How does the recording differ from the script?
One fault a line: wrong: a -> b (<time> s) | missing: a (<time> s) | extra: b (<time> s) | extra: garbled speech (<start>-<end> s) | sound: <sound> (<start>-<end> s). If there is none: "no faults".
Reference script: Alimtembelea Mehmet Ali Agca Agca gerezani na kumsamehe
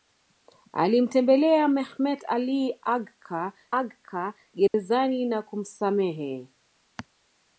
sound: dropout (4.7-4.7 s)